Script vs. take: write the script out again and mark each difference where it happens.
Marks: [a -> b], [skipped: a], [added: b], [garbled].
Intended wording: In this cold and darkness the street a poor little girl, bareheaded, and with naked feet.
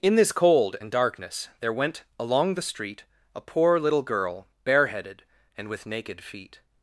In this cold and darkness [added: there went along] the street a poor little girl, bareheaded, and with naked feet.